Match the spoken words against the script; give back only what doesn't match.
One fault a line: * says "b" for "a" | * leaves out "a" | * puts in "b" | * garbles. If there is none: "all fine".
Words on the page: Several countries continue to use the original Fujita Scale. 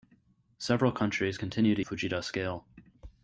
* leaves out "use the original"